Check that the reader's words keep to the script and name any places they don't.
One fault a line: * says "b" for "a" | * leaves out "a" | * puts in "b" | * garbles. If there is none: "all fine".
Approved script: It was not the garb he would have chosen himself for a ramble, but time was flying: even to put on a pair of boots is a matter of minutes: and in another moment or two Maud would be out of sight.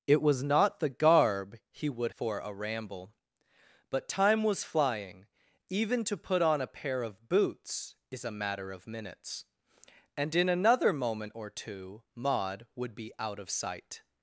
* leaves out "have chosen himself"